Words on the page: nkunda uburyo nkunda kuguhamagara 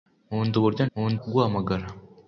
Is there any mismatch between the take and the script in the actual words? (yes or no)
no